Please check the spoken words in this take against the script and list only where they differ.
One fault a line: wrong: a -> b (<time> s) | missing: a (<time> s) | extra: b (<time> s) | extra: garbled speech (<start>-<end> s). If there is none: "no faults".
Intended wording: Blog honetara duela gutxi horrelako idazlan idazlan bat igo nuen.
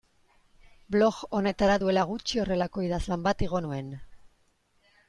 missing: idazlan (3.3 s)